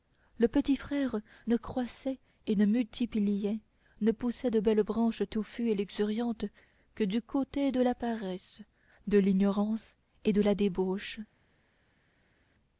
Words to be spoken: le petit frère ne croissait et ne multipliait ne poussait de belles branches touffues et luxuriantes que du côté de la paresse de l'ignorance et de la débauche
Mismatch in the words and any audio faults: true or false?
false